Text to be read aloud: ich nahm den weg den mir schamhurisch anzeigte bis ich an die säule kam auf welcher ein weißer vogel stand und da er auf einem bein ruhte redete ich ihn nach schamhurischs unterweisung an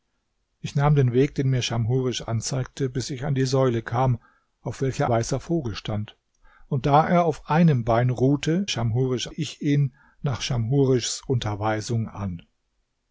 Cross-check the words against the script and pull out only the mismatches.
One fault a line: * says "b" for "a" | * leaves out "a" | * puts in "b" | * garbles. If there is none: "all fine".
* leaves out "ein"
* says "schamhurisch" for "redete"